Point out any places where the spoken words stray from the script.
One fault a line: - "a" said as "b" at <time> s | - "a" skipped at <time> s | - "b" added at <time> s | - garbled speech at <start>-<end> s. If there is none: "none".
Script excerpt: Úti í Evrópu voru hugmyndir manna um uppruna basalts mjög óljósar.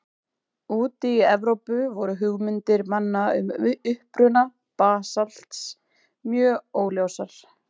none